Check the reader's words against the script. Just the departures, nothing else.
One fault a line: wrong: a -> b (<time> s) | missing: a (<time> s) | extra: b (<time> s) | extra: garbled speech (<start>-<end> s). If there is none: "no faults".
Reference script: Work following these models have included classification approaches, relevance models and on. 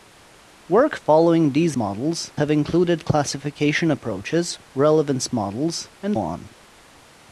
no faults